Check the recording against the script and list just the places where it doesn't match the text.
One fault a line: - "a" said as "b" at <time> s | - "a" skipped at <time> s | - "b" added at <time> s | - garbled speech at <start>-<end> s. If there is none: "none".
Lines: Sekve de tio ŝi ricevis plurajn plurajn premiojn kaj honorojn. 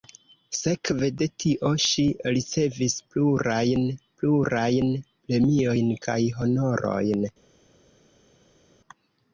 none